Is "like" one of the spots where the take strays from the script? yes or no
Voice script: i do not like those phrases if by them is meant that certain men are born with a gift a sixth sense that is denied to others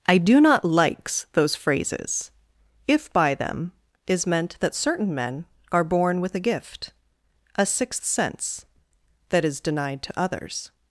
yes